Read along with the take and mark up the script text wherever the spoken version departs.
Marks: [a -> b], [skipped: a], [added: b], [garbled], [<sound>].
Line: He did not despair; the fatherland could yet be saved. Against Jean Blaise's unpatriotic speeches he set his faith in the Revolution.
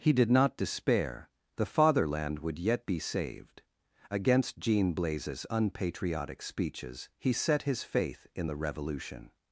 He did not despair; the fatherland [could -> would] yet be saved. Against Jean Blaise's unpatriotic speeches he set his faith in the Revolution.